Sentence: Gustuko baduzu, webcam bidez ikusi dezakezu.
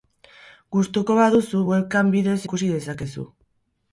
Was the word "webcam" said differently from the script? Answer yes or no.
no